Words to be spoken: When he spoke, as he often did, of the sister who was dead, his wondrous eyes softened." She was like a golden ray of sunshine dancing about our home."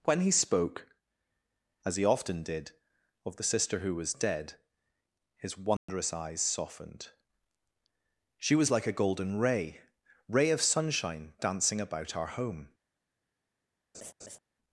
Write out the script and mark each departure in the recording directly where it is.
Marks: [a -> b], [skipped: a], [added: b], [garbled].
When he spoke, as he often did, of the sister who was dead, his wondrous eyes softened." She was like a golden ray [added: ray] of sunshine dancing about our home."